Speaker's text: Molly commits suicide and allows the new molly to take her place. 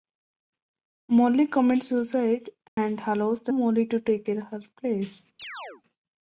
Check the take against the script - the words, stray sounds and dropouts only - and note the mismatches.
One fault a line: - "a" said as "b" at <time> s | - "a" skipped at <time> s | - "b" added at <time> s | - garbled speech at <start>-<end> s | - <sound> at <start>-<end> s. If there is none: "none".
- dropout at 2.7-2.8 s
- "new" skipped at 3.5 s
- chirp at 5.4-5.8 s